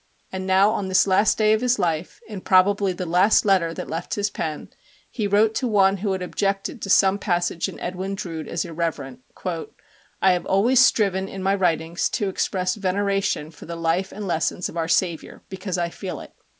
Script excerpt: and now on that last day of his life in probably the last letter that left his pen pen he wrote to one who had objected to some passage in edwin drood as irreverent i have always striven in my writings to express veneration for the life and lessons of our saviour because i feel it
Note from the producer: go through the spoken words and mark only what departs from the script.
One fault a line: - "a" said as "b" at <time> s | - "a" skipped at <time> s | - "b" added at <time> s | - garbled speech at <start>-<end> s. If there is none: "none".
- "that" said as "this" at 0.9 s
- "pen" skipped at 4.7 s